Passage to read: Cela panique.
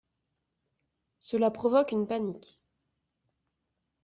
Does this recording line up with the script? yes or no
no